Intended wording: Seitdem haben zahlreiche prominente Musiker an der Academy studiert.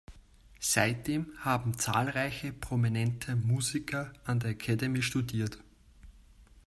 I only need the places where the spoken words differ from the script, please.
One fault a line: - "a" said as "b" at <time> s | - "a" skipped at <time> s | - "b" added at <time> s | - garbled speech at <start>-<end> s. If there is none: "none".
none